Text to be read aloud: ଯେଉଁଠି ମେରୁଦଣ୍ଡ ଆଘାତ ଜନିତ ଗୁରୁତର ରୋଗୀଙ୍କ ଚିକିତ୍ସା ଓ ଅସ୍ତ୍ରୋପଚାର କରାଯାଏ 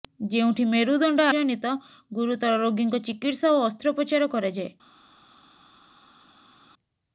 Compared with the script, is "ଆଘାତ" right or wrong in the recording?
wrong